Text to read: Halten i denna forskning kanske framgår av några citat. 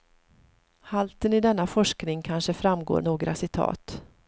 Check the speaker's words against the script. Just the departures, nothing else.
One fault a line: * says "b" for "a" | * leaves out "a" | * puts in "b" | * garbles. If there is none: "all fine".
* leaves out "av"